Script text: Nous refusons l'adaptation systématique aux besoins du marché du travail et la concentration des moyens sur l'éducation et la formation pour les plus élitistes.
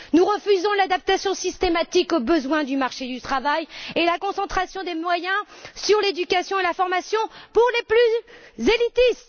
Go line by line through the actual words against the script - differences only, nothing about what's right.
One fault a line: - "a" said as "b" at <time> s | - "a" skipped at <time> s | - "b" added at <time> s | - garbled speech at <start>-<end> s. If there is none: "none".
none